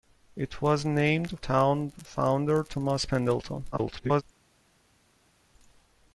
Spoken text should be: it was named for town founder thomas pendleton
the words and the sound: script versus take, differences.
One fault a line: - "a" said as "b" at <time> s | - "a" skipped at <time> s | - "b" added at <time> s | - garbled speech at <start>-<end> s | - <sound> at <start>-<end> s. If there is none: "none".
- "for" skipped at 1.4 s
- garbled speech at 3.7-4.2 s